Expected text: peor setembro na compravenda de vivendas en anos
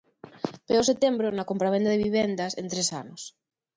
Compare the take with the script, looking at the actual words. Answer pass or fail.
fail